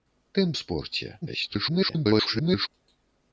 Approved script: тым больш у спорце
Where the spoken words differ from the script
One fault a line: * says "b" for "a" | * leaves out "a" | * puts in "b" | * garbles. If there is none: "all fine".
* leaves out "больш"
* garbles